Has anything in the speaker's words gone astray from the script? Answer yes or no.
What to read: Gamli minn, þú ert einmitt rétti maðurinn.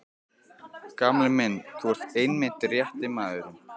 no